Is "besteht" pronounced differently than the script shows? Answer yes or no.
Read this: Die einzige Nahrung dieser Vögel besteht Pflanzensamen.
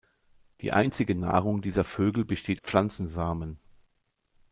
no